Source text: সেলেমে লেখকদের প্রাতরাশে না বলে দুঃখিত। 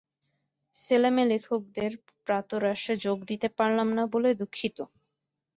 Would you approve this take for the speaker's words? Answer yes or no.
no